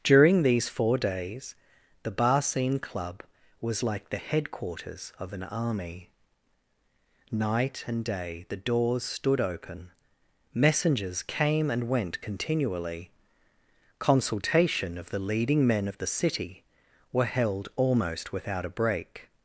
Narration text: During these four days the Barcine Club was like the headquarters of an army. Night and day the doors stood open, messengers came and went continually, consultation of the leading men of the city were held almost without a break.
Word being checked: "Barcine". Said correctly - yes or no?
yes